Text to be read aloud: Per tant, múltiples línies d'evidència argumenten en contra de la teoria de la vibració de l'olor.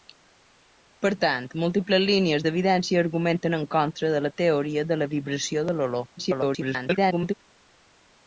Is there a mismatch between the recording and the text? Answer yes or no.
yes